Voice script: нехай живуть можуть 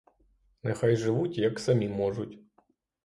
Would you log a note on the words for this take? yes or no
yes